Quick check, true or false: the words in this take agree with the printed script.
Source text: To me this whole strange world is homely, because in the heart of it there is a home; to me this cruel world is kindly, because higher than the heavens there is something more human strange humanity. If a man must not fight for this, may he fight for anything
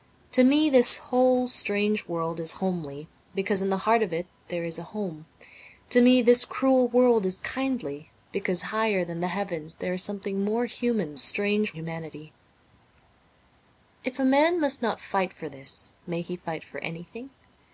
true